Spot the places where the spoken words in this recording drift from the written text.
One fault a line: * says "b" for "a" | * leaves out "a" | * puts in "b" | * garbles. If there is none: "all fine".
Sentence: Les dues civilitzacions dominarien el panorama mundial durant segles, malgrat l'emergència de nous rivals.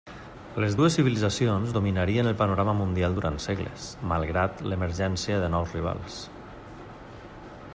all fine